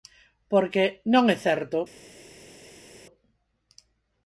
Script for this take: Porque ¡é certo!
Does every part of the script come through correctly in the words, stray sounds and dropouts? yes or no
no